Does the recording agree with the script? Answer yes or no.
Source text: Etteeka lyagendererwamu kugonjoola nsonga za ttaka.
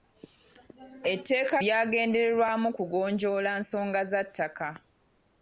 yes